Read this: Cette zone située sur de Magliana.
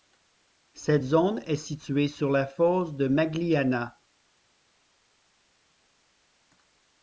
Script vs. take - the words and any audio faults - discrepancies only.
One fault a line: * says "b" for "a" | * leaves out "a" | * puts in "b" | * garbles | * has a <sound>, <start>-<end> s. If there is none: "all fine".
* puts in "est"
* puts in "la fosse"